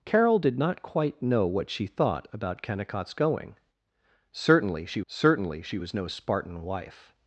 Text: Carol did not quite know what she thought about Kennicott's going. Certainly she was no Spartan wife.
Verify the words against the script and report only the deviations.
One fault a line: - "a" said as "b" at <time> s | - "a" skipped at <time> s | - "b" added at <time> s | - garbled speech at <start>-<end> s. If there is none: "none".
- "certainly she" added at 5.1 s